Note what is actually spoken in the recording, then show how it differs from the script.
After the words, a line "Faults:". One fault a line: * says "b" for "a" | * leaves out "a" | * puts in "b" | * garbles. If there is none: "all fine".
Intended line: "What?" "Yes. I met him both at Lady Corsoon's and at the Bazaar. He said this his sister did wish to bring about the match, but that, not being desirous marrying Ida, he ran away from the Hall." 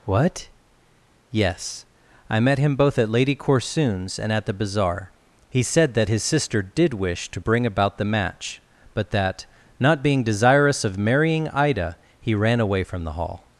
"What?" "Yes. I met him both at Lady Corsoon's and at the Bazaar. He said that his sister did wish to bring about the match, but that, not being desirous of marrying Ida, he ran away from the Hall."
Faults:
* says "that" for "this"
* puts in "of"